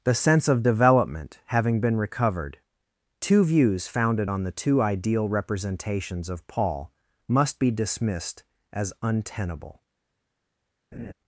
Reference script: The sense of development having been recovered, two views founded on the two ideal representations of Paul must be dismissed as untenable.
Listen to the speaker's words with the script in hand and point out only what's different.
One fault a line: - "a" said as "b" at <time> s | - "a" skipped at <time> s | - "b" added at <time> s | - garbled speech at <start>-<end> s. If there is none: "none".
none